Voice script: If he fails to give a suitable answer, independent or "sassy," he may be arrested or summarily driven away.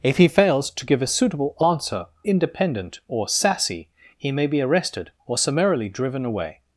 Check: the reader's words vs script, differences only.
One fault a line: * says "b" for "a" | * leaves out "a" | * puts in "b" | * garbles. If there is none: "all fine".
all fine